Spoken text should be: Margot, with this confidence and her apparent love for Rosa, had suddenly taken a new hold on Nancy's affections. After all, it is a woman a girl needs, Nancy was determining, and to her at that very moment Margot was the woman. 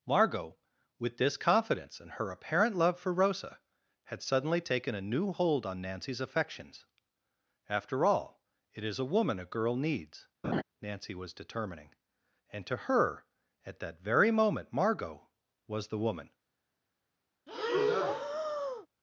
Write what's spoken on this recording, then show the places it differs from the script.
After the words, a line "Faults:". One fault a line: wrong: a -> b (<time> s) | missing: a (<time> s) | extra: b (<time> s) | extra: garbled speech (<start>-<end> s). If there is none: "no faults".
Margot, with this confidence and her apparent love for Rosa, had suddenly taken a new hold on Nancy's affections. After all, it is a woman a girl needs, Nancy was determining, and to her at that very moment Margot was the woman.
Faults:
no faults